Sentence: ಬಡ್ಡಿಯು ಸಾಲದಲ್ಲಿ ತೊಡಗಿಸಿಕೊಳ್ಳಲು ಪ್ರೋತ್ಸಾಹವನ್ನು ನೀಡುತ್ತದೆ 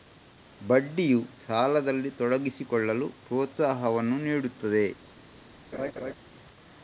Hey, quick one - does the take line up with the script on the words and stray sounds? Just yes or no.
no